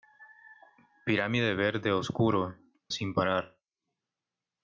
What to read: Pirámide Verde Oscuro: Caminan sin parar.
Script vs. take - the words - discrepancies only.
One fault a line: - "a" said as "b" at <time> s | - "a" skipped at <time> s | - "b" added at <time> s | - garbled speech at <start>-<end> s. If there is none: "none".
- "Caminan" skipped at 2.6 s